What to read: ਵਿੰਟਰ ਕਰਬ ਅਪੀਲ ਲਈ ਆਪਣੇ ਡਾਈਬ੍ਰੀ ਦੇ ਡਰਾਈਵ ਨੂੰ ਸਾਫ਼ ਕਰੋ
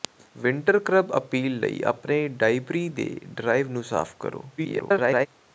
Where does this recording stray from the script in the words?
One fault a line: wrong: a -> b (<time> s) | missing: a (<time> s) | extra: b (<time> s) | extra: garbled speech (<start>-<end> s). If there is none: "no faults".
extra: garbled speech (4.6-5.3 s)